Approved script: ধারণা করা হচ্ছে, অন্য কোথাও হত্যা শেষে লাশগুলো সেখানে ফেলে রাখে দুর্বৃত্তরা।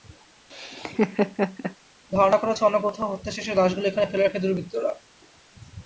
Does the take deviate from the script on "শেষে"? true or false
false